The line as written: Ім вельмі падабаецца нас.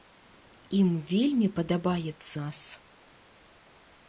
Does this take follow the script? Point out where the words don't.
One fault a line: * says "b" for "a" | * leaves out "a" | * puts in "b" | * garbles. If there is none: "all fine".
all fine